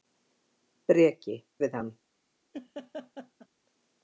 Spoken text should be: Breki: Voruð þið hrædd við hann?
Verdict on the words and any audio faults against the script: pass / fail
fail